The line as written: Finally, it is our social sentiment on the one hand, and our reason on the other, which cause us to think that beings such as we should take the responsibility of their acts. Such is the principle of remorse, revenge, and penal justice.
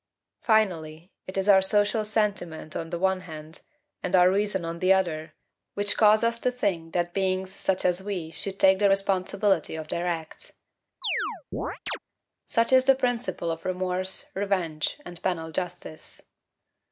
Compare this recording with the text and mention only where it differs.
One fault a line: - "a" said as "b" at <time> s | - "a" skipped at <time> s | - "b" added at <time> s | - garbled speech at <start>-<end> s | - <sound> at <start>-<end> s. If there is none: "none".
- chirp at 11.0-12.0 s